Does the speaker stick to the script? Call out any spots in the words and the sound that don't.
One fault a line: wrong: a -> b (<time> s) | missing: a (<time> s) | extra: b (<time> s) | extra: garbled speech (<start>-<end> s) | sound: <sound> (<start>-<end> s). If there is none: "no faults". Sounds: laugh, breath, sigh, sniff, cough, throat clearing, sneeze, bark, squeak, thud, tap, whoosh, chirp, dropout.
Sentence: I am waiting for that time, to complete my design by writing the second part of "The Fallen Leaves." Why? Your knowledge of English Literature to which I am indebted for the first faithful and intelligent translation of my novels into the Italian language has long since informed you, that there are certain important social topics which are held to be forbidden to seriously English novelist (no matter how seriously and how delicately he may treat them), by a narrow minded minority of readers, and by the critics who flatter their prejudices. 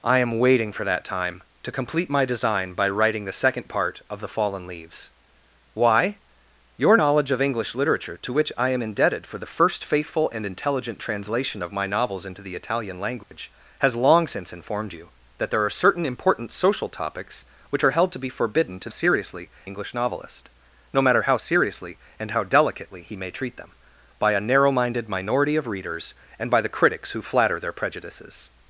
sound: dropout (13.2-13.3 s)